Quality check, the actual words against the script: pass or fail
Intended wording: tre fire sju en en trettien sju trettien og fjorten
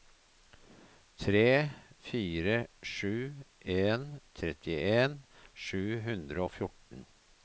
fail